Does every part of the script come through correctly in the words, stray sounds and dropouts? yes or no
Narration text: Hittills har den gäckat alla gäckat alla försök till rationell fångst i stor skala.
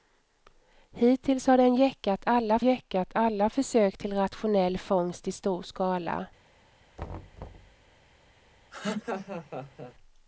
no